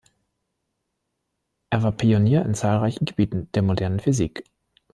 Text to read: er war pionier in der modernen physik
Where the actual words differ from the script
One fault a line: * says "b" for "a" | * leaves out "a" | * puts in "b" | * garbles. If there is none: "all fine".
* puts in "zahlreichen gebieten"